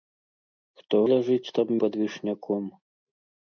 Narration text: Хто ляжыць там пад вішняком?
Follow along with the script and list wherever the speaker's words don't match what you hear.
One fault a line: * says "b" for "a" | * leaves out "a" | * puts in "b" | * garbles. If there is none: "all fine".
all fine